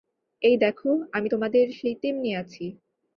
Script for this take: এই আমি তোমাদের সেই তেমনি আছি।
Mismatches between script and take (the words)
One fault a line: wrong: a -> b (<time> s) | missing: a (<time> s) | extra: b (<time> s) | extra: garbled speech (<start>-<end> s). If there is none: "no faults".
extra: দেখো (0.6 s)